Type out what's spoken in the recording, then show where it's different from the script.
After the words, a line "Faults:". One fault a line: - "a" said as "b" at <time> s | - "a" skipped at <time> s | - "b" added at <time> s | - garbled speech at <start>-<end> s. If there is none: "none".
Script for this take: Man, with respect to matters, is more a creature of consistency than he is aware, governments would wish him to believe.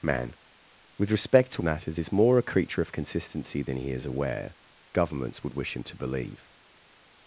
Man, with respect to matters, is more a creature of consistency than he is aware, governments would wish him to believe.
Faults:
none